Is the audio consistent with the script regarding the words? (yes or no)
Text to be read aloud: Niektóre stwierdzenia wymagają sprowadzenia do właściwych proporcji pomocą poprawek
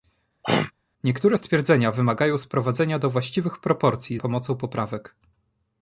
yes